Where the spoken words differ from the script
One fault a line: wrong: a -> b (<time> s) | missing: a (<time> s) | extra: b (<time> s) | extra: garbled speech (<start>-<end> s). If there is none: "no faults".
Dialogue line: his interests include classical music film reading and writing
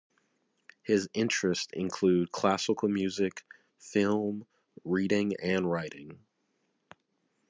no faults